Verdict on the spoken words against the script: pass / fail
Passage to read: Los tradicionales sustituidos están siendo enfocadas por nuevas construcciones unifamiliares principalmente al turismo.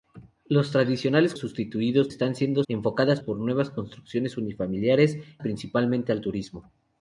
pass